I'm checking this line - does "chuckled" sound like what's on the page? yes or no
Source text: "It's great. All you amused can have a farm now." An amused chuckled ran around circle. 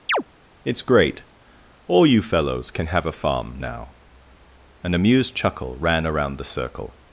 no